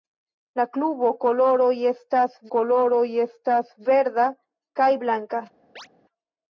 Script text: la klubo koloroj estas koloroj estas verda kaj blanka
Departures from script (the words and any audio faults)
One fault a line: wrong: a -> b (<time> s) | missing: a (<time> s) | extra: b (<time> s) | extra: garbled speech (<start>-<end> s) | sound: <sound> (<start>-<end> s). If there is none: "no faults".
sound: chirp (5.8-5.9 s)